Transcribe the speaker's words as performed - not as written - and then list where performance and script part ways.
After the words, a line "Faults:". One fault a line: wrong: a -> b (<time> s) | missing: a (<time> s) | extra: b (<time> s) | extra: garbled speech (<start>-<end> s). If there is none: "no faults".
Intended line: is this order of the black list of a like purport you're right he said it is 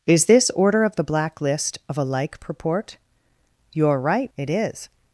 is this order of the black list of a like purport you're right it is
Faults:
missing: he said (4.3 s)